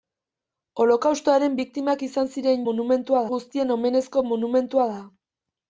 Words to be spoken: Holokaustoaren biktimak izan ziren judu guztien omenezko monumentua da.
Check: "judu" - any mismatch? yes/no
yes